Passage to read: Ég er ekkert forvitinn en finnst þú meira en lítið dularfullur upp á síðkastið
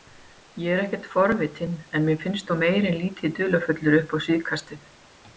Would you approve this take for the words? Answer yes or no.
no